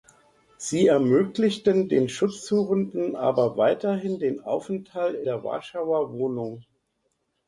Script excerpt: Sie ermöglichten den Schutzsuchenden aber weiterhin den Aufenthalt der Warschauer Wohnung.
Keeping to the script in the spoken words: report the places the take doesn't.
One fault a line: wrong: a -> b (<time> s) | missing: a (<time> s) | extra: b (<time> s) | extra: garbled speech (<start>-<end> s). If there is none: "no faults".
no faults